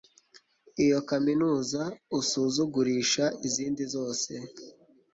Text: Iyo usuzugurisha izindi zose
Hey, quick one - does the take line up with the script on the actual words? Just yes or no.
no